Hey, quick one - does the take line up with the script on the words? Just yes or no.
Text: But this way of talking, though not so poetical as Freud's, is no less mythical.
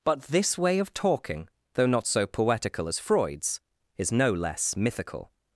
yes